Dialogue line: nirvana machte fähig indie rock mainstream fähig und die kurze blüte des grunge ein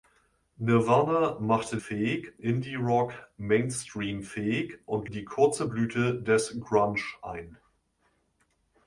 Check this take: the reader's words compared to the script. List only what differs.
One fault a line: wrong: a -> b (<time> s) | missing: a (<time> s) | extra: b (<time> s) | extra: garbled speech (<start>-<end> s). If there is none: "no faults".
no faults